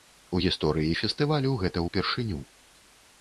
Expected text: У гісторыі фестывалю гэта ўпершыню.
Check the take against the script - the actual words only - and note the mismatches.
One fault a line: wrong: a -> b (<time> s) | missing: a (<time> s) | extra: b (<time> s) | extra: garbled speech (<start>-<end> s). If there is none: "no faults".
no faults